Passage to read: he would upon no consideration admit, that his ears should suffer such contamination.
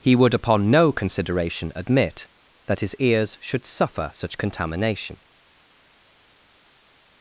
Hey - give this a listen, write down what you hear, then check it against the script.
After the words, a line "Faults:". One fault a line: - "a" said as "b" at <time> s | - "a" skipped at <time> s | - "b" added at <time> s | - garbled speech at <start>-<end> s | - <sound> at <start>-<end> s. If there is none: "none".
he would upon no consideration admit, that his ears should suffer such contamination.
Faults:
none